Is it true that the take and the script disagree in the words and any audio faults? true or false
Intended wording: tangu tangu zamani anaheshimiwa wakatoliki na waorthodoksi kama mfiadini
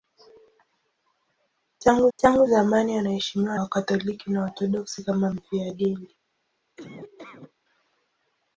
true